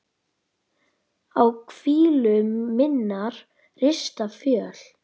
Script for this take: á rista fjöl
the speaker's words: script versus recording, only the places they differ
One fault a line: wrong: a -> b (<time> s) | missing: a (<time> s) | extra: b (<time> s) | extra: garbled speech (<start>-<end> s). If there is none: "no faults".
extra: hvílu minnar (1.7 s)